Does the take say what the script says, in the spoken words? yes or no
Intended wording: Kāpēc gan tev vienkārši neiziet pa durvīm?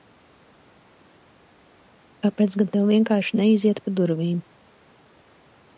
yes